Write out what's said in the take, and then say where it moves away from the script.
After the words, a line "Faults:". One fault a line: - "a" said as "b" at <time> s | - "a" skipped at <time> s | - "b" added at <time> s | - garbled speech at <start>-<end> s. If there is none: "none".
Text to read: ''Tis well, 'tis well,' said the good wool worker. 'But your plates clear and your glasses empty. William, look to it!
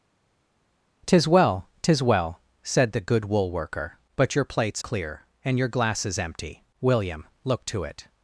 ''Tis well, 'tis well,' said the good wool worker. 'But your plates clear and your glasses empty. William, look to it!
Faults:
none